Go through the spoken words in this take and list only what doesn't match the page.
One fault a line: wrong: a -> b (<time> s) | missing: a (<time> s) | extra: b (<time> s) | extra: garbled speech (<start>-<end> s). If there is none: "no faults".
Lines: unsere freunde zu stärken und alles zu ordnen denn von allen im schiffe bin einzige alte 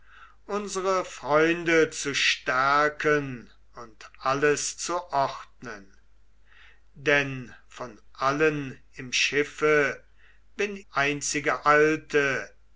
no faults